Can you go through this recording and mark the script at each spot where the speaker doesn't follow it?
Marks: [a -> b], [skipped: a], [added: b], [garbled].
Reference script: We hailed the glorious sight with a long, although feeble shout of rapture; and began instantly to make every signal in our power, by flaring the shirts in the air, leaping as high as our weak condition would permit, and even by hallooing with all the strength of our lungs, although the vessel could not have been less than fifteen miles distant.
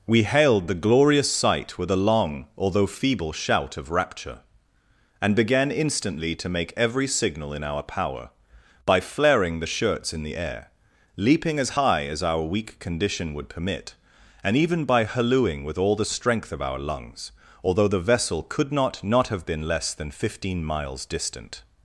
We hailed the glorious sight with a long, although feeble shout of rapture; and began instantly to make every signal in our power, by flaring the shirts in the air, leaping as high as our weak condition would permit, and even by hallooing with all the strength of our lungs, although the vessel could not [added: not] have been less than fifteen miles distant.